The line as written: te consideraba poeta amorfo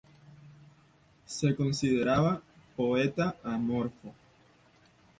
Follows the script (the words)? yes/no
no